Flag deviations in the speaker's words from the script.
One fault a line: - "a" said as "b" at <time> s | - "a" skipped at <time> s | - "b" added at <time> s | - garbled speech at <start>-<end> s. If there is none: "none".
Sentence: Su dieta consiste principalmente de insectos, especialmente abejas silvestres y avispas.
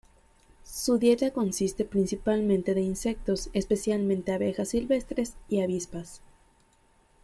none